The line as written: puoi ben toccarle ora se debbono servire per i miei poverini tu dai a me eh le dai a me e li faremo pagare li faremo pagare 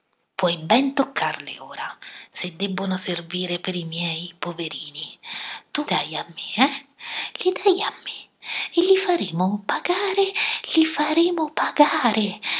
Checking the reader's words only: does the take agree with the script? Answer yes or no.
yes